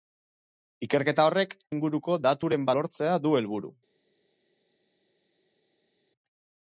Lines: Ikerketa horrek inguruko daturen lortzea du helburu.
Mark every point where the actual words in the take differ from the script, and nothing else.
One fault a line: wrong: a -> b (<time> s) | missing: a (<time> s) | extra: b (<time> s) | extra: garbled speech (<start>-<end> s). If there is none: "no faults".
no faults